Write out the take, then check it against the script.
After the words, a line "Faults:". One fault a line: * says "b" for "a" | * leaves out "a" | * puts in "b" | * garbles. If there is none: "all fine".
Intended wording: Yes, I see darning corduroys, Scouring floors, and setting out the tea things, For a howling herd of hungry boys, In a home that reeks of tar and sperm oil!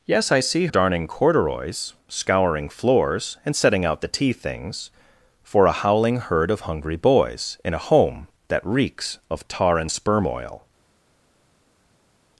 Yes, I see darning corduroys, Scouring floors, and setting out the tea things, For a howling herd of hungry boys, In a home that reeks of tar and sperm oil!
Faults:
all fine